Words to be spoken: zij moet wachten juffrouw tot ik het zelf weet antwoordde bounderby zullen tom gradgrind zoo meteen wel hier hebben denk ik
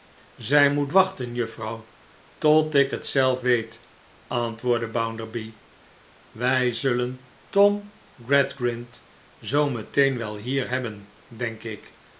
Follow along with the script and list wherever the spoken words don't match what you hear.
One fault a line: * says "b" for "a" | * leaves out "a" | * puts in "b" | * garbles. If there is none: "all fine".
* puts in "wij"